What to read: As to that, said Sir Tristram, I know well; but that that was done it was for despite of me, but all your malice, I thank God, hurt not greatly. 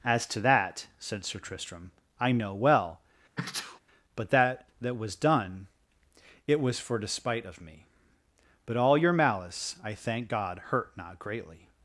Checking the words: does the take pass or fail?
pass